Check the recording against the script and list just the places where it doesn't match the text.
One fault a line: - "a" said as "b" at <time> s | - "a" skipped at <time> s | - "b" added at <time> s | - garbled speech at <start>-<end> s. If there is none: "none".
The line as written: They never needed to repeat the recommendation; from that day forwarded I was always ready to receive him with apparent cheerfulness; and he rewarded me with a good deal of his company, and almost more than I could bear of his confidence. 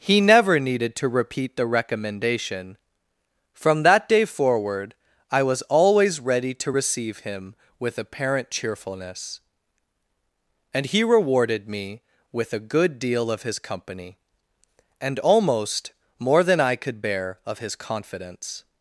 - "They" said as "He" at 0.0 s
- "forwarded" said as "forward" at 4.2 s